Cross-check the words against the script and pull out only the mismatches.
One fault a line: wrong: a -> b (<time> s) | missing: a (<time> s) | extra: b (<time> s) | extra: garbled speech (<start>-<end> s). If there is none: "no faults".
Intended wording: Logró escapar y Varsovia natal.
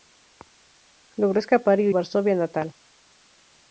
no faults